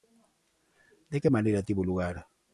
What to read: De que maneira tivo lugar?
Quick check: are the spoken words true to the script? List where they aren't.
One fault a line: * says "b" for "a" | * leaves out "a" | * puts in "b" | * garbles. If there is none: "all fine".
all fine